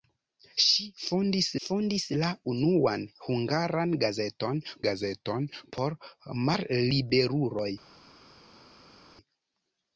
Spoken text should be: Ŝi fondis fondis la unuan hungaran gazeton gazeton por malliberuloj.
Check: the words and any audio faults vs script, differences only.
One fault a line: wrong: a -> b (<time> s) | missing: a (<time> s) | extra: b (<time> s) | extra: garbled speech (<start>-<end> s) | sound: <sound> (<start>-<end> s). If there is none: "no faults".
no faults